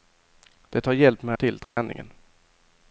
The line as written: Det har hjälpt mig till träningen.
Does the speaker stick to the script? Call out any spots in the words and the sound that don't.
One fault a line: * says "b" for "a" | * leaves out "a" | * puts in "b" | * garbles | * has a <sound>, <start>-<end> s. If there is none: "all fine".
* has a dropout, 1.6-1.8 s